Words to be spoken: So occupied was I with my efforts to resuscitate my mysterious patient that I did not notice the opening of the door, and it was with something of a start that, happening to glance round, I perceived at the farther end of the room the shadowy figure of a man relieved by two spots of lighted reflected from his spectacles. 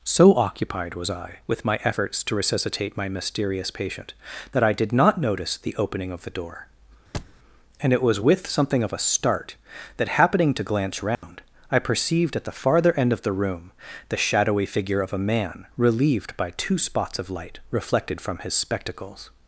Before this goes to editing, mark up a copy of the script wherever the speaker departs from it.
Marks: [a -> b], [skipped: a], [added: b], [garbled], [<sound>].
So occupied was I with my efforts to resuscitate my mysterious patient that I did not notice the opening of the door, [thud] and it was with something of a start that, happening to glance round, [dropout] I perceived at the farther end of the room the shadowy figure of a man relieved by two spots of [lighted -> light] reflected from his spectacles.